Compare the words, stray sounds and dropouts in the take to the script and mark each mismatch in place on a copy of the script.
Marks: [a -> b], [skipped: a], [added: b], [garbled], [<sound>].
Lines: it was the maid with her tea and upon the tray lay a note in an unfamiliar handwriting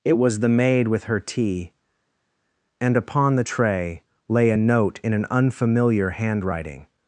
it was the maid with her tea and upon the tray lay a note in an unfamiliar handwriting